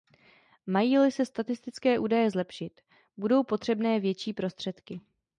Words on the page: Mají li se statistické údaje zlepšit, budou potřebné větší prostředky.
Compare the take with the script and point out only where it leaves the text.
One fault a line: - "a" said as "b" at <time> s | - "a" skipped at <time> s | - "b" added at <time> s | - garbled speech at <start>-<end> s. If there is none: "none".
none